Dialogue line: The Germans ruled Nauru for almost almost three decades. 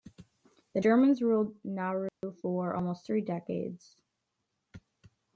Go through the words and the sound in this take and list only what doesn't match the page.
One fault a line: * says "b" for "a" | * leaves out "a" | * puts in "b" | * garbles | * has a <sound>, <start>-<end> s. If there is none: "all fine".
* has a dropout, 2.1-2.2 s
* leaves out "almost"